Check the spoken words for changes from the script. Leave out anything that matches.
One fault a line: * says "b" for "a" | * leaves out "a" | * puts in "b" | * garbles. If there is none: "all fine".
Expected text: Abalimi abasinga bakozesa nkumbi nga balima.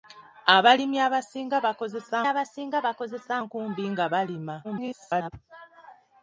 * puts in "abasinga bakozesa"
* garbles